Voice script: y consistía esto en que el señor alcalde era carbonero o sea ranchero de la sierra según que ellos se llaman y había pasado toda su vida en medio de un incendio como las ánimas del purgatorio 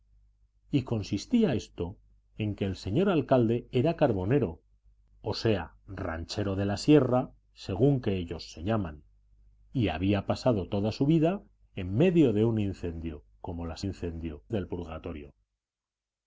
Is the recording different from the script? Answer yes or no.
yes